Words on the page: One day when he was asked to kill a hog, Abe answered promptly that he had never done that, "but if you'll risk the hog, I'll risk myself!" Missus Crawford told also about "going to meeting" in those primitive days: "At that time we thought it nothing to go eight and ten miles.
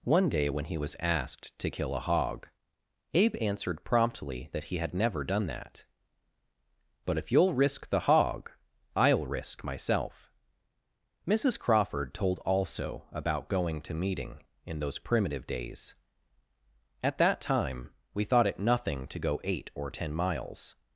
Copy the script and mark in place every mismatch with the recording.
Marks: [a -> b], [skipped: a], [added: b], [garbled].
One day when he was asked to kill a hog, Abe answered promptly that he had never done that, "but if you'll risk the hog, I'll risk myself!" Missus Crawford told also about "going to meeting" in those primitive days: "At that time we thought it nothing to go eight [and -> or] ten miles.